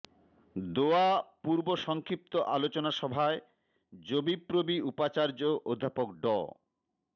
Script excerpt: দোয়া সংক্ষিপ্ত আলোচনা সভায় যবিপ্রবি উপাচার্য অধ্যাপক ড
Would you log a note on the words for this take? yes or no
yes